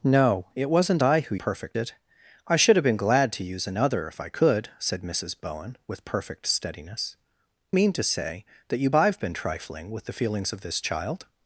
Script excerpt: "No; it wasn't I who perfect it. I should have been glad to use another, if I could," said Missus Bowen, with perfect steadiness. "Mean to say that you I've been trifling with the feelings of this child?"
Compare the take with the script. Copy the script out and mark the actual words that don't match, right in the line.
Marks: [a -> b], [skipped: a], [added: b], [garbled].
"No; it wasn't I who perfect it. I should have been glad to use another, if I could," said Missus Bowen, with perfect steadiness. "Mean to say that you I've been trifling with the feelings of this child?"